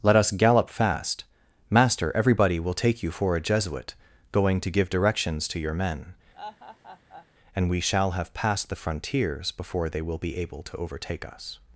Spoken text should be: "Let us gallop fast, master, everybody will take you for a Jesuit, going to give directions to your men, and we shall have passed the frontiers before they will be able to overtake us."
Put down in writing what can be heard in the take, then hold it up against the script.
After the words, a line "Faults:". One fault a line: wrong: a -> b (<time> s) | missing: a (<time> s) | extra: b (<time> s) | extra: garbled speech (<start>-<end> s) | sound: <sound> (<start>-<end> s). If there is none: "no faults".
"Let us gallop fast, master, everybody will take you for a Jesuit, going to give directions to your men, and we shall have passed the frontiers before they will be able to overtake us."
Faults:
sound: laugh (6.3-7.3 s)